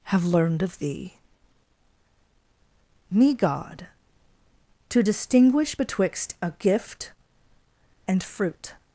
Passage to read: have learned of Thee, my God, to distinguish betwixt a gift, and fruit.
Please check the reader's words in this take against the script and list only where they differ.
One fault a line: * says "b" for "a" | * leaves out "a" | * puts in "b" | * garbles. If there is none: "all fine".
* says "me" for "my"